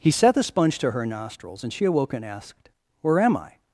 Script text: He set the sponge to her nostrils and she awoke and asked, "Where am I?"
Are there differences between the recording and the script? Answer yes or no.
no